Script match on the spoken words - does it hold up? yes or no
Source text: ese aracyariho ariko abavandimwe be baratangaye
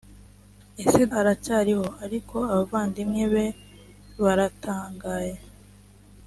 yes